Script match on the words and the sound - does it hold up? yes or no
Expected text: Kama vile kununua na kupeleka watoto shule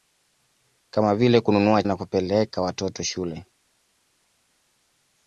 yes